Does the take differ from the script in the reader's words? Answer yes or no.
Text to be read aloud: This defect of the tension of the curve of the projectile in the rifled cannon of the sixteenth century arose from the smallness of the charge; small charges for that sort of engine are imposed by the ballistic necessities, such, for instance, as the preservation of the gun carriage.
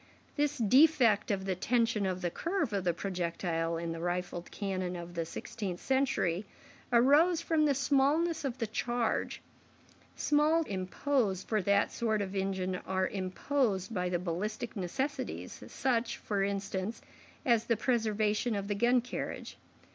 yes